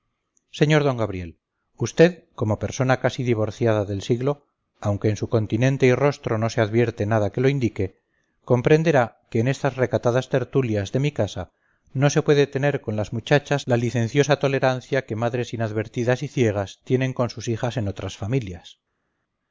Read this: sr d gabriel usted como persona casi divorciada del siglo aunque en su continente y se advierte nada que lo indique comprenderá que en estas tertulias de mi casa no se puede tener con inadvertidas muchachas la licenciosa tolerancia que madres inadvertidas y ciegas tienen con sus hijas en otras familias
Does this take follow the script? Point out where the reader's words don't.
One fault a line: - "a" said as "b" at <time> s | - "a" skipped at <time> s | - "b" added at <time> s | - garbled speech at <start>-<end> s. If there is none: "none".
- "rostro no" added at 5.9 s
- "recatadas" added at 9.8 s
- "inadvertidas" said as "las" at 13.0 s